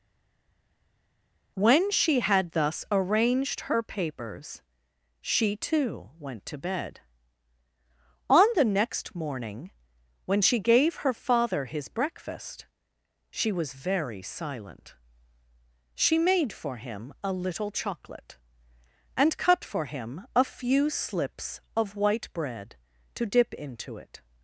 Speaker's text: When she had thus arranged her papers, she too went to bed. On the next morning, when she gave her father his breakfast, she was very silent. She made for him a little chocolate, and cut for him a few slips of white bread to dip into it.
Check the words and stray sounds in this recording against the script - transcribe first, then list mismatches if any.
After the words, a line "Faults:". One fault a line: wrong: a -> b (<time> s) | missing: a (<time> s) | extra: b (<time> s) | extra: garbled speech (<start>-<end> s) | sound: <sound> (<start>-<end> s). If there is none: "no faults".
When she had thus arranged her papers, she too went to bed. On the next morning, when she gave her father his breakfast, she was very silent. She made for him a little chocolate, and cut for him a few slips of white bread to dip into it.
Faults:
no faults